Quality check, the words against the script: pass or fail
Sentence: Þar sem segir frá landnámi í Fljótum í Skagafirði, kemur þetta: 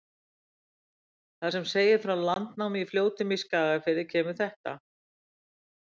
pass